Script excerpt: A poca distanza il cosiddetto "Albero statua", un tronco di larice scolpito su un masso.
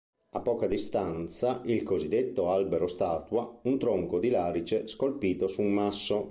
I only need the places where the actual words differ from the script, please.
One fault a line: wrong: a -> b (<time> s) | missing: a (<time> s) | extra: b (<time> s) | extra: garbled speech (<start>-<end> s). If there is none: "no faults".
no faults